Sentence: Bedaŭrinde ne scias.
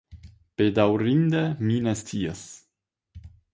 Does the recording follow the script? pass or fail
fail